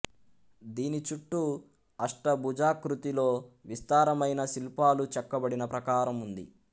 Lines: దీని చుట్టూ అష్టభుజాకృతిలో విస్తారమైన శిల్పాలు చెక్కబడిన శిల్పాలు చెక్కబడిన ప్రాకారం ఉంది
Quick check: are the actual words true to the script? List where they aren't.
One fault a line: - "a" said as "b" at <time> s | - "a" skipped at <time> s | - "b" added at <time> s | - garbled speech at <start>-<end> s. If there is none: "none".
- "శిల్పాలు చెక్కబడిన" skipped at 5.6 s